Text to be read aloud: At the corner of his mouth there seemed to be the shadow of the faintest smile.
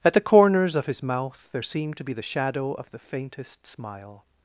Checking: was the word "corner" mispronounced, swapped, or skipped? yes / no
yes